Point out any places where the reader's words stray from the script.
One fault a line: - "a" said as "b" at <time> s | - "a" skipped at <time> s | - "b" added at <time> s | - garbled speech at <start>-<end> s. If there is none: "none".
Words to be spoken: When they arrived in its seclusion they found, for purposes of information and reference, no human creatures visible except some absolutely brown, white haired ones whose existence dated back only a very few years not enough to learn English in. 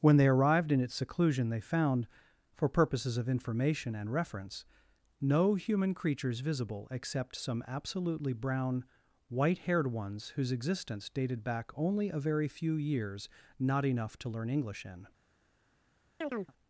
none